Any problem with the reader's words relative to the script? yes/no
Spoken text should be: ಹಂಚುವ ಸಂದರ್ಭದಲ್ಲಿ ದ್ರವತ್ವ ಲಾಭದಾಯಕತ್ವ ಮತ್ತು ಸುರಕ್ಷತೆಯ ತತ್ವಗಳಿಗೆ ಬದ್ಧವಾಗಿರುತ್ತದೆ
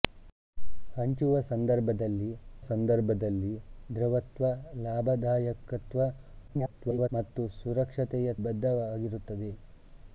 yes